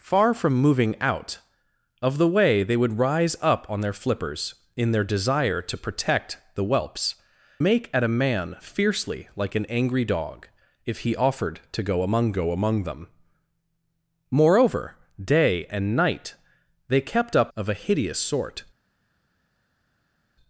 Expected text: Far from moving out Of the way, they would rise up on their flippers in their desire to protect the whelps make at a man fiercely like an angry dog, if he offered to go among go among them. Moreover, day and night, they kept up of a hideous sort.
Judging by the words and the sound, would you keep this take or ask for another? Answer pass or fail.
pass